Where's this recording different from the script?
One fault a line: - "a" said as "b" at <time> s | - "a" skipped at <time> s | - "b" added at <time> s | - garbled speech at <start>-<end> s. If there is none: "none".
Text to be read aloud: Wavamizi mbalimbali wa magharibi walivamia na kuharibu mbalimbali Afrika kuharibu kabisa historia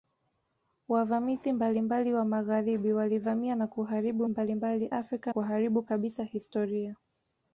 none